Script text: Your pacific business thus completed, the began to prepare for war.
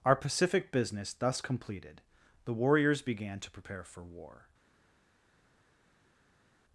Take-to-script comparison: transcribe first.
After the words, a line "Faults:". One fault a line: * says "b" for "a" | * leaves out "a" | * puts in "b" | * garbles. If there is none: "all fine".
Our pacific business thus completed, the warriors began to prepare for war.
Faults:
* says "Our" for "Your"
* puts in "warriors"